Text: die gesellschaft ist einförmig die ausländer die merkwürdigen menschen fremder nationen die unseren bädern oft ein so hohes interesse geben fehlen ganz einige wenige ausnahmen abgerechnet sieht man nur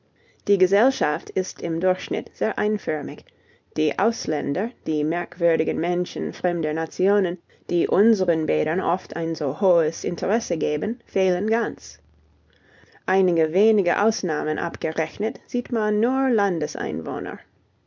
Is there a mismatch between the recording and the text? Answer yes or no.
yes